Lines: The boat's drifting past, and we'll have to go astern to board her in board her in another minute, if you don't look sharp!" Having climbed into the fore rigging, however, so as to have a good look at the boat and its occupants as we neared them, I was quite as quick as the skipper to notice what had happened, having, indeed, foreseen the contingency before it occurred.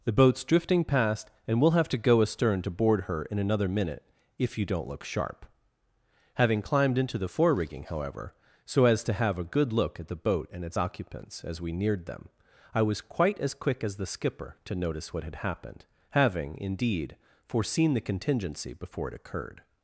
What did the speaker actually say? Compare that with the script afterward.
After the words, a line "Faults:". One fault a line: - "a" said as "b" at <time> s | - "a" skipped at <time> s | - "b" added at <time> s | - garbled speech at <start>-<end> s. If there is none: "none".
The boat's drifting past, and we'll have to go astern to board her in another minute, if you don't look sharp!" Having climbed into the fore rigging, however, so as to have a good look at the boat and its occupants as we neared them, I was quite as quick as the skipper to notice what had happened, having, indeed, foreseen the contingency before it occurred.
Faults:
- "board her in" skipped at 3.4 s